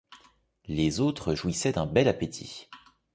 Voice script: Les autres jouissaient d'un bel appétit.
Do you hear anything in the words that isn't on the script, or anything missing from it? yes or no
no